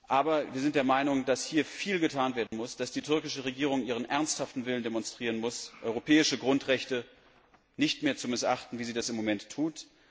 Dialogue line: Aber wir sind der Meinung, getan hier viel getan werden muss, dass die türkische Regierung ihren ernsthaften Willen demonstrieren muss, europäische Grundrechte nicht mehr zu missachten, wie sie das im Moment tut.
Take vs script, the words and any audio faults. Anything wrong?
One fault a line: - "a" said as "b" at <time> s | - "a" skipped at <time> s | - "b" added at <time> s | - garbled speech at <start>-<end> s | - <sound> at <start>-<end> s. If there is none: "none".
- "getan" said as "dass" at 1.2 s
- dropout at 2.5-2.5 s